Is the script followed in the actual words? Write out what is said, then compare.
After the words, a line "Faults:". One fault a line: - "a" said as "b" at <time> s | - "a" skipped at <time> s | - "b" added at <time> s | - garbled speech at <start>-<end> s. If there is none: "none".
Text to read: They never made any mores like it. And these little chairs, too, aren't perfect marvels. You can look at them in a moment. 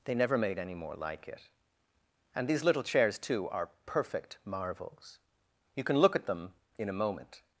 They never made any more like it. And these little chairs, too, are perfect marvels. You can look at them in a moment.
Faults:
- "mores" said as "more" at 0.7 s
- "aren't" said as "are" at 3.5 s